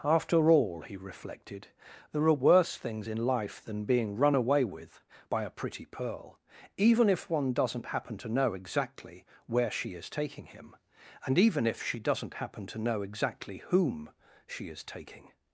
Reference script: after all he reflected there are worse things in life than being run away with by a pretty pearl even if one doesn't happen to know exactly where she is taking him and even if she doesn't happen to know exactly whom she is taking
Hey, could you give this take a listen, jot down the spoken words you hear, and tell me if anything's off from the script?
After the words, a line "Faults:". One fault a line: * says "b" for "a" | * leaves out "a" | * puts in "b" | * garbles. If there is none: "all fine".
after all he reflected there are worse things in life than being run away with by a pretty pearl even if one doesn't happen to know exactly where she is taking him and even if she doesn't happen to know exactly whom she is taking
Faults:
all fine